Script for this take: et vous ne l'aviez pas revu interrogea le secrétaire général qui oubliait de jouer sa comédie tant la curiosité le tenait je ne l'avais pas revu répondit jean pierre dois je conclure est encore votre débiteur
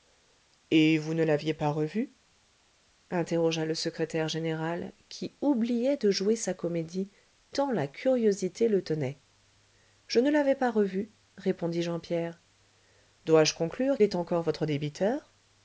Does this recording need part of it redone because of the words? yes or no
no